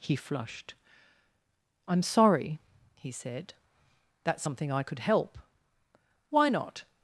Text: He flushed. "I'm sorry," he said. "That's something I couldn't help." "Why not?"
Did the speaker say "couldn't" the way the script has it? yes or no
no